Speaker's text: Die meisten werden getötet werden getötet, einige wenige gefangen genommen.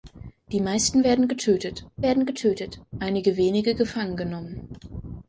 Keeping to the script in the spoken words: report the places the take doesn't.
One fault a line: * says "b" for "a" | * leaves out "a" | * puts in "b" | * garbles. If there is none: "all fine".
all fine